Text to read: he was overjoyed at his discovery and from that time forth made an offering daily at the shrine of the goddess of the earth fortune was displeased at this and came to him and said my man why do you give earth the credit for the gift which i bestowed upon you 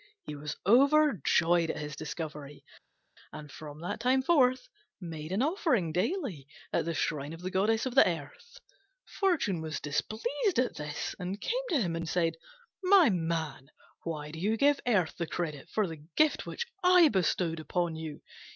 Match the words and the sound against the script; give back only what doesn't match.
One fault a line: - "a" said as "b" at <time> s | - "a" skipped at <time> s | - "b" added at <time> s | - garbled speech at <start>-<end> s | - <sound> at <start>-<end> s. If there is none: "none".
none